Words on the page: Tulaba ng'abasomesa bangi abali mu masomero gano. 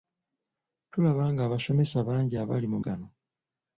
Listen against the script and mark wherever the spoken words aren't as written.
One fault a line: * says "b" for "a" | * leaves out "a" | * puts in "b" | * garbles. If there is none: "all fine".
* leaves out "masomero"